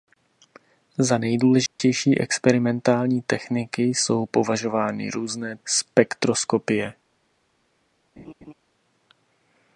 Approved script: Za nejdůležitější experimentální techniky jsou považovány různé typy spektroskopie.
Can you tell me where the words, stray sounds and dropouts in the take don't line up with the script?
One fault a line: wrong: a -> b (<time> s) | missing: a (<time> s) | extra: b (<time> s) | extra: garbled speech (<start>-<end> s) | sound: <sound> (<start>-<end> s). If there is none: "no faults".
sound: dropout (1.7-1.8 s)
missing: typy (5.6 s)
sound: laugh (8.2-8.5 s)